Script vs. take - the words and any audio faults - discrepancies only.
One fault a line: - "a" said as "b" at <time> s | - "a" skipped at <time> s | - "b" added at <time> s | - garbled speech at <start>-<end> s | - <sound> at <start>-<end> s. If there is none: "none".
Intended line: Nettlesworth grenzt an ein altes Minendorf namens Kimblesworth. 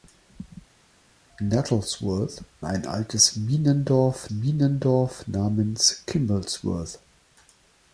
- "grenzt an" skipped at 2.4 s
- "Minendorf" added at 4.3 s